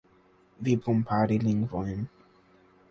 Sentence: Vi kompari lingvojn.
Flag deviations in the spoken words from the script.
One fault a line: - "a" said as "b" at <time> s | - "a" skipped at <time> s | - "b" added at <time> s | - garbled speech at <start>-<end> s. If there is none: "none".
none